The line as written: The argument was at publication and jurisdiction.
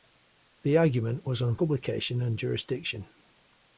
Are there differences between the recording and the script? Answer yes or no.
yes